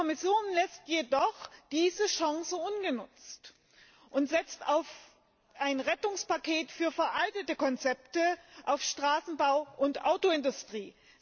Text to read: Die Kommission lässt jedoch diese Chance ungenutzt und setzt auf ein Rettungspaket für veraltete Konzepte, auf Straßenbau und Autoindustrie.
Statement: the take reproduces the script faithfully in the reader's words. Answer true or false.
true